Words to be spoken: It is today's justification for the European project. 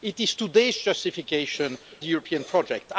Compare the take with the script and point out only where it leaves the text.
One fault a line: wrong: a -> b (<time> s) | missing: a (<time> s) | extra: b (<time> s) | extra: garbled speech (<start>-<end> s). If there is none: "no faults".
missing: for (1.8 s)